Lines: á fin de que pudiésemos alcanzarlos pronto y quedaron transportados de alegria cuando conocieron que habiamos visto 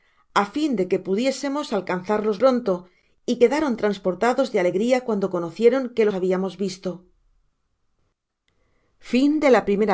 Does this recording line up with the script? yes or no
yes